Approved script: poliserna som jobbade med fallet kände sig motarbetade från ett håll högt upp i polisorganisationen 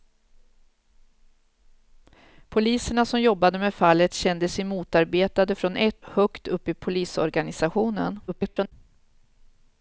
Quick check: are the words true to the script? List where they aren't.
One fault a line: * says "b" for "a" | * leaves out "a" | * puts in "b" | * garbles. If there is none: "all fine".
* leaves out "håll"
* garbles